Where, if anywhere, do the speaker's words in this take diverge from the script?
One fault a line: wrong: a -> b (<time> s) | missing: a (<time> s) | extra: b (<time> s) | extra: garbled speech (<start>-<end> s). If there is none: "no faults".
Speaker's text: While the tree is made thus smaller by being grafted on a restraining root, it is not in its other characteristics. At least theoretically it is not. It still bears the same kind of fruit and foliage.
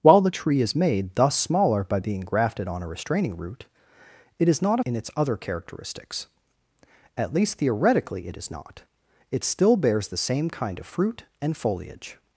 no faults